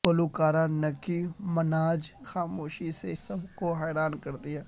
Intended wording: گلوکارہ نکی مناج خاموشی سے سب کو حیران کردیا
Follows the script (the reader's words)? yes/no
yes